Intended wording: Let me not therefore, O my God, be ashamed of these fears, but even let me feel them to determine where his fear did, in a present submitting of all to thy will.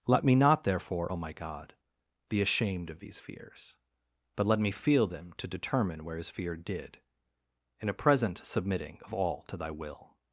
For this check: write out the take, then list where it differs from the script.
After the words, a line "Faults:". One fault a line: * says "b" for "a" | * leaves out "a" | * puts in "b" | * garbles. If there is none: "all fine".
Let me not therefore, O my God, be ashamed of these fears, but let me feel them to determine where his fear did, in a present submitting of all to thy will.
Faults:
* leaves out "even"